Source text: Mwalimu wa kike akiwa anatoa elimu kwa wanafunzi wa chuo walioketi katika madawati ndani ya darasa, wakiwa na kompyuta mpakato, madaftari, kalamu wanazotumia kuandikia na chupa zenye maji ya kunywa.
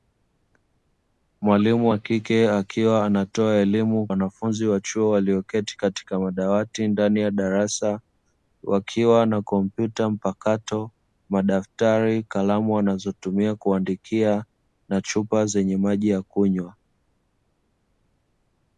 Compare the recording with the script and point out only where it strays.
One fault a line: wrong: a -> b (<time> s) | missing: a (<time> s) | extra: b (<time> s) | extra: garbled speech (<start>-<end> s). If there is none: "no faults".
missing: kwa (4.1 s)